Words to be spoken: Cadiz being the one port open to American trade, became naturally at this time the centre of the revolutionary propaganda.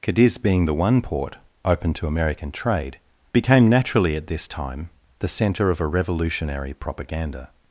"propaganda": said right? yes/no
yes